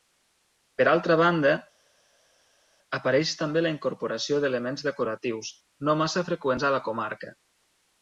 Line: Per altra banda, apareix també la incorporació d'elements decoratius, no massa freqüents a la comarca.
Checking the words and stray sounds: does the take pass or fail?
pass